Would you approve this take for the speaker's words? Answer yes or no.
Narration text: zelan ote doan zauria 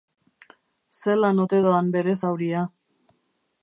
no